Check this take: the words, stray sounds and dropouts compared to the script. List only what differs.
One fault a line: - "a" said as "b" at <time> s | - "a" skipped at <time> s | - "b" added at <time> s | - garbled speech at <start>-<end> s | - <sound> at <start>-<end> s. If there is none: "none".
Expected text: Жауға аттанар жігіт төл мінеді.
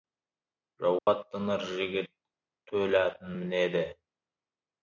- dropout at 1.0-1.1 s
- "атын" added at 3.0 s